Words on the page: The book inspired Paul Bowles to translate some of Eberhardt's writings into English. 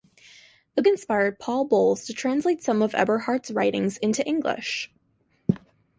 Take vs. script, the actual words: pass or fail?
fail